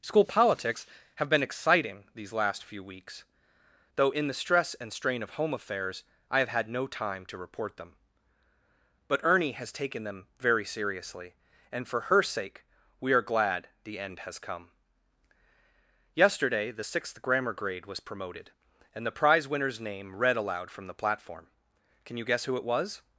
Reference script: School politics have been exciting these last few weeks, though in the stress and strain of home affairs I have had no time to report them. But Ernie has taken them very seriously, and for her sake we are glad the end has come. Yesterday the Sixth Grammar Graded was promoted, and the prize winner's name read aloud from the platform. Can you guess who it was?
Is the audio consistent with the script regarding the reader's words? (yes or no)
no